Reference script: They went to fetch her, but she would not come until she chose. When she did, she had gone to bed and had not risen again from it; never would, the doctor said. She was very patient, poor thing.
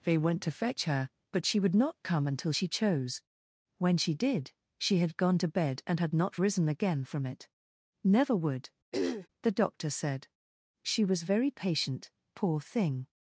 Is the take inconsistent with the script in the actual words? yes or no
no